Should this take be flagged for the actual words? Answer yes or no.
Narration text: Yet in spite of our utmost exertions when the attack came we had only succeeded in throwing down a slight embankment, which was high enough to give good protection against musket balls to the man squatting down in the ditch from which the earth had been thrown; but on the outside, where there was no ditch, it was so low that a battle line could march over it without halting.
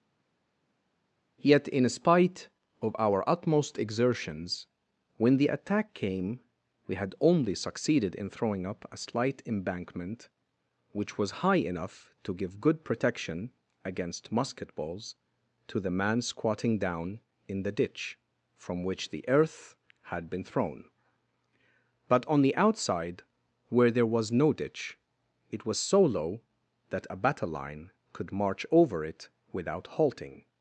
yes